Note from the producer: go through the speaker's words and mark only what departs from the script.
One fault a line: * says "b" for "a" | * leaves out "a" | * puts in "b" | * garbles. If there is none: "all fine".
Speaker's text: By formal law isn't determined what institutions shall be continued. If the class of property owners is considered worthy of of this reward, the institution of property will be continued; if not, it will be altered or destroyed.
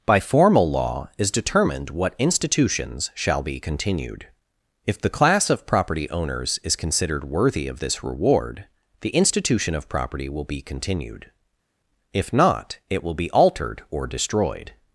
* says "is" for "isn't"
* leaves out "of"